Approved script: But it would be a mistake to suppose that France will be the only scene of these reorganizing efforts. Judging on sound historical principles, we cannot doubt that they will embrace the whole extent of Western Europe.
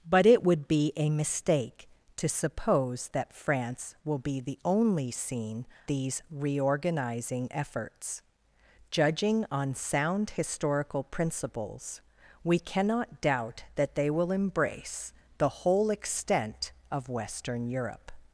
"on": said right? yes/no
yes